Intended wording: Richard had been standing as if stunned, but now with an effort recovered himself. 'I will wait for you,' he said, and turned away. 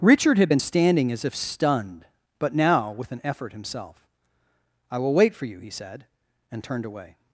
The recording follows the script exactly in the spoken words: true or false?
false